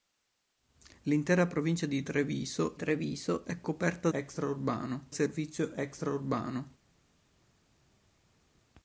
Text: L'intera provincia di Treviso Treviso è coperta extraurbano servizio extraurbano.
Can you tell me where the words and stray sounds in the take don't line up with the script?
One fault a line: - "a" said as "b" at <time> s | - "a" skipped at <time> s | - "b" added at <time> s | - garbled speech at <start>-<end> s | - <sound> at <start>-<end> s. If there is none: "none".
none